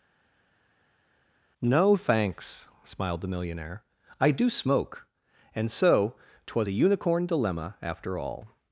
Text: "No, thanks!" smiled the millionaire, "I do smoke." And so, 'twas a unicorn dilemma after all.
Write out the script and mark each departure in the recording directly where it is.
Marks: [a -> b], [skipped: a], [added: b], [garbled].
"No, thanks!" smiled the millionaire, "I do smoke." And so, 'twas a unicorn dilemma after all.